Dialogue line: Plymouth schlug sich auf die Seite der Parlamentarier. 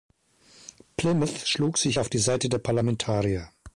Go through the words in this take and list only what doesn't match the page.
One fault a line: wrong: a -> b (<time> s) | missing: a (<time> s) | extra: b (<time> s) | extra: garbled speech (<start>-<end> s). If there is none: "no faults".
no faults